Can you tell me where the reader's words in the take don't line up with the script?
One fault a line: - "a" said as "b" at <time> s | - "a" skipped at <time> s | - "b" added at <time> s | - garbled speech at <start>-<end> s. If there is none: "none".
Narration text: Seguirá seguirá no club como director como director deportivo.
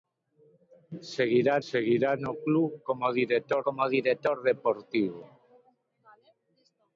none